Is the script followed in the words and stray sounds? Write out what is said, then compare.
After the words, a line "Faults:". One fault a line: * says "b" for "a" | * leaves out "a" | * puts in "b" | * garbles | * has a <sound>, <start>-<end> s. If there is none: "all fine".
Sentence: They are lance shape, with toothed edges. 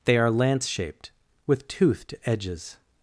They are lance shaped, with toothed edges.
Faults:
* says "shaped" for "shape"